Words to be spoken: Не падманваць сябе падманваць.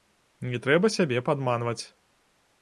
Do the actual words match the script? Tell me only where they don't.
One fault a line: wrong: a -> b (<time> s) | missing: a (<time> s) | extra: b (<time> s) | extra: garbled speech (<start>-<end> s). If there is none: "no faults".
wrong: падманваць -> трэба (0.6 s)